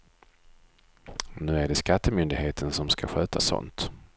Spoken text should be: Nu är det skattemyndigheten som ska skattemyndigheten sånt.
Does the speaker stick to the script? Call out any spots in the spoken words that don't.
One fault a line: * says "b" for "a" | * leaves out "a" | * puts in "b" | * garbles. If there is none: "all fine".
* says "sköta" for "skattemyndigheten"